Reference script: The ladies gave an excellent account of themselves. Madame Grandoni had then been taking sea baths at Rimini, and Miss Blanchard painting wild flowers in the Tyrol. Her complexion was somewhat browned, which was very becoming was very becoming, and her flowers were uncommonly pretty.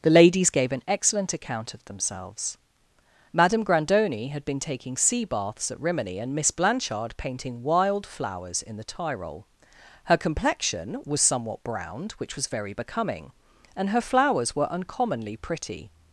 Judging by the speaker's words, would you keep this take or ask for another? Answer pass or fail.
fail